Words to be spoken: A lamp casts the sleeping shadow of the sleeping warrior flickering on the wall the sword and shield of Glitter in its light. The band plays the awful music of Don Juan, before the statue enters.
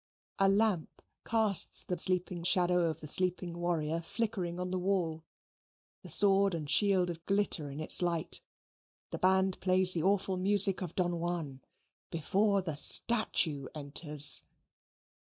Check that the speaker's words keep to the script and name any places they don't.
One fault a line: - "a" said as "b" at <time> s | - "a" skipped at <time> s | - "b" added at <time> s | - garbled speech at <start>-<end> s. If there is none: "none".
none